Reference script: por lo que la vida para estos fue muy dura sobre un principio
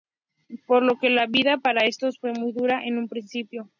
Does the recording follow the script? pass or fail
fail